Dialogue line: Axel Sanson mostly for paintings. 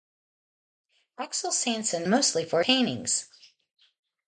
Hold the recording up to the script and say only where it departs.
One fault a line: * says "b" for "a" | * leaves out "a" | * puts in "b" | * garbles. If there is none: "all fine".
all fine